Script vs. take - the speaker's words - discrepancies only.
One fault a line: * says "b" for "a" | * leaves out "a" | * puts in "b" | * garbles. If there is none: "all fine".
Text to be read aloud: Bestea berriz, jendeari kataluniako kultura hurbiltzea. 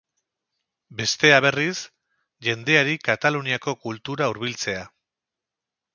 all fine